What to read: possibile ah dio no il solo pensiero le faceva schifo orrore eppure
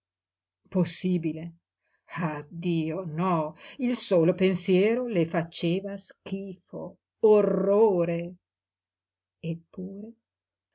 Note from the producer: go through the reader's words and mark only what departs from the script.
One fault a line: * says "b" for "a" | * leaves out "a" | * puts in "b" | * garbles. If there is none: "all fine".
all fine